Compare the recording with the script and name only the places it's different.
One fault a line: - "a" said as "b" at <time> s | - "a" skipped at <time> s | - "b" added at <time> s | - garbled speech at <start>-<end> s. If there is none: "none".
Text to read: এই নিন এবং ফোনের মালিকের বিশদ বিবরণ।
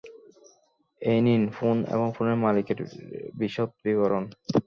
- "ফোন" added at 1.6 s